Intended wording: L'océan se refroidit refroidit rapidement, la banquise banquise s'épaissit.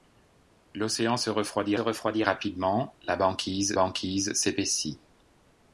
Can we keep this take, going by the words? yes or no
yes